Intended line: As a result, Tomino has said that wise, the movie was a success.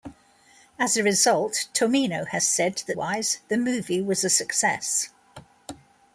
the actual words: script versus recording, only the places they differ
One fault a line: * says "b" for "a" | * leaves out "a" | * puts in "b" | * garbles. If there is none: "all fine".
all fine